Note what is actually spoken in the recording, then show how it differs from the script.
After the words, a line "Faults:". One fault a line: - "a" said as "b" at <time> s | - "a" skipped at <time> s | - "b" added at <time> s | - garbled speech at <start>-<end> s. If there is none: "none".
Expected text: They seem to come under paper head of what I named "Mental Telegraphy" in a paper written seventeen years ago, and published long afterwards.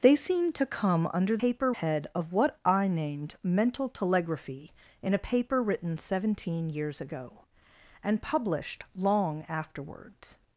They seem to come under paper head of what I named "Mental Telegraphy" in a paper written seventeen years ago, and published long afterwards.
Faults:
none